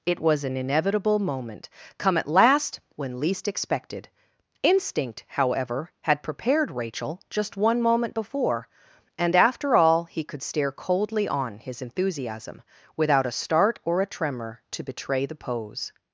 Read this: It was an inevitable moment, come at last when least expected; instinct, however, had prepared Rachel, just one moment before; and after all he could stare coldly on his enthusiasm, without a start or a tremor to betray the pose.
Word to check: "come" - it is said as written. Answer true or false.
true